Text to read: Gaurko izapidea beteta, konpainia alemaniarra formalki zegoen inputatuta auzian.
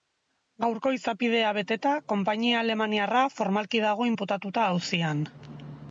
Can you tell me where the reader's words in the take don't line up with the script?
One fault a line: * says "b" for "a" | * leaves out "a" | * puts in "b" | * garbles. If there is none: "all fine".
* says "dago" for "zegoen"